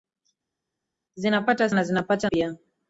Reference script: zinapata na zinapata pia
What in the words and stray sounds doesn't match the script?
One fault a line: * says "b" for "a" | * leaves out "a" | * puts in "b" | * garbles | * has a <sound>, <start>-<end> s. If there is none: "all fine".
all fine